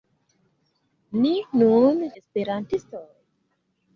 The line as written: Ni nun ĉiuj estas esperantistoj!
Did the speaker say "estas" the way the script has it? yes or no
no